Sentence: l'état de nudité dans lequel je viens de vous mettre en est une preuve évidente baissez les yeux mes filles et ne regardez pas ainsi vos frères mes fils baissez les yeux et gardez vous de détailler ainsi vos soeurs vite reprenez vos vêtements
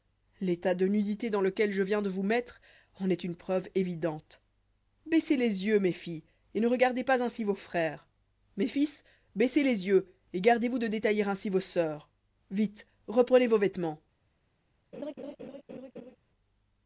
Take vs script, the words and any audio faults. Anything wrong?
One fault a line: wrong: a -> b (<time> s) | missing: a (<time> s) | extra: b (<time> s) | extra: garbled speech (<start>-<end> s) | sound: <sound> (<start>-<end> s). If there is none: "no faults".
sound: laugh (14.9-16.2 s)